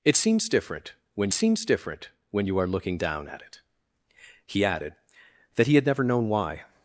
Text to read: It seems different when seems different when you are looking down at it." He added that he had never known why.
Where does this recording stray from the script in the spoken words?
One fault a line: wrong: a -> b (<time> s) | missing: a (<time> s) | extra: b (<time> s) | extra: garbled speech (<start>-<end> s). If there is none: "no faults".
no faults